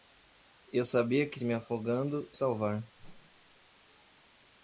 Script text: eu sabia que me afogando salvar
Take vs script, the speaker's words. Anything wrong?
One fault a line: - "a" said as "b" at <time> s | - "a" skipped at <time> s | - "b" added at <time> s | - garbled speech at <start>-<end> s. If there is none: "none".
none